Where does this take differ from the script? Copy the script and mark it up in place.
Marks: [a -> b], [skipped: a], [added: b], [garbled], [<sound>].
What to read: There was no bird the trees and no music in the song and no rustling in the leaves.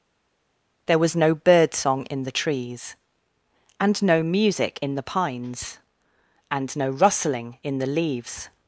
There was no bird [added: song in] the trees and no music in the [song -> pines] and no rustling in the leaves.